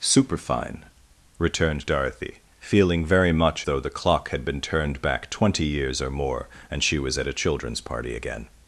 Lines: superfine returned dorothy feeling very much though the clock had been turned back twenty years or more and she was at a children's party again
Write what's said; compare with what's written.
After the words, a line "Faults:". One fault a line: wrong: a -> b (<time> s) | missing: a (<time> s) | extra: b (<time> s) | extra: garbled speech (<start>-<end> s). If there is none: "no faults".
superfine returned dorothy feeling very much though the clock had been turned back twenty years or more and she was at a children's party again
Faults:
no faults